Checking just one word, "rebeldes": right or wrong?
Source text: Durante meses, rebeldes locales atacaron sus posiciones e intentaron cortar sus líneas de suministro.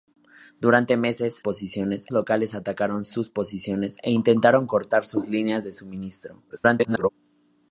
wrong